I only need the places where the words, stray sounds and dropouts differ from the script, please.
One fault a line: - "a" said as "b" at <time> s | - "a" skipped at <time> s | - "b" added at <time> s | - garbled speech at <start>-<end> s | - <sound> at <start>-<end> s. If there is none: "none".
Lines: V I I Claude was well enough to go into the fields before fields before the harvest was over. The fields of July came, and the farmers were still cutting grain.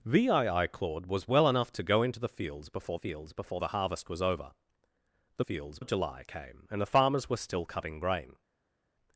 none